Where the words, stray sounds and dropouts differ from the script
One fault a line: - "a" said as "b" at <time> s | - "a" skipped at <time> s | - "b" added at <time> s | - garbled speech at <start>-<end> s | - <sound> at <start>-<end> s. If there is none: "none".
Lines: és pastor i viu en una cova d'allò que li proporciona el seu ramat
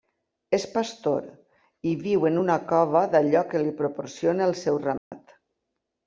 - dropout at 5.0-5.1 s